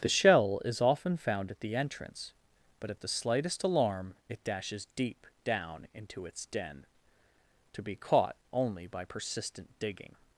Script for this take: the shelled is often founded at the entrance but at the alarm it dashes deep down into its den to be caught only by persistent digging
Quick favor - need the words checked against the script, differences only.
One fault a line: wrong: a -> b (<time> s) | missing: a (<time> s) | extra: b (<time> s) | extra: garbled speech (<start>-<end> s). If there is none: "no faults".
wrong: shelled -> shell (0.1 s)
wrong: founded -> found (1.2 s)
extra: slightest (3.1 s)